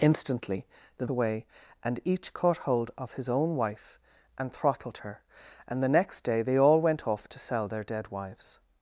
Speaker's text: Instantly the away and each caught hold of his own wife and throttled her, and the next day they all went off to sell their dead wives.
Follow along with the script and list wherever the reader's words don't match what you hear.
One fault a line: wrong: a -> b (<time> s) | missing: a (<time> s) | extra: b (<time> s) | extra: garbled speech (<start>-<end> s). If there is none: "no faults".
no faults